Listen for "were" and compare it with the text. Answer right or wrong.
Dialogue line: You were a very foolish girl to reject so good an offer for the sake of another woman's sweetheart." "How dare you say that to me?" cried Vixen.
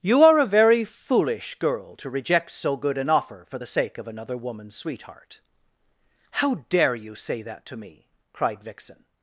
wrong